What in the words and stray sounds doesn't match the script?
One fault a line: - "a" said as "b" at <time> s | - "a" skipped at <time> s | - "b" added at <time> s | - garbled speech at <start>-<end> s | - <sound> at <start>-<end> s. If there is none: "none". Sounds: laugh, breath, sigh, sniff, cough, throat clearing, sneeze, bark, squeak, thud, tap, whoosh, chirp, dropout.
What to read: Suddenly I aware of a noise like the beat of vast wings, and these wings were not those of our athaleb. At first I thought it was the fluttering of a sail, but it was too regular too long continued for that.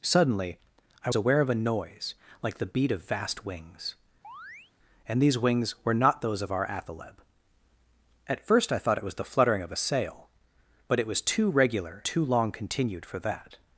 - chirp at 4.2-4.7 s